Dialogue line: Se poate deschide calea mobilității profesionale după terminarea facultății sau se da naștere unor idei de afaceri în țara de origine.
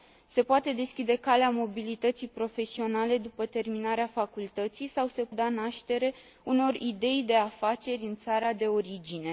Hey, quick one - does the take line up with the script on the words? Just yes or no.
yes